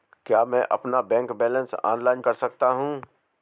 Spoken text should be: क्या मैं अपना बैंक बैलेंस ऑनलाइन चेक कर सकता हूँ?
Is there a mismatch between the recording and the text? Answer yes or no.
yes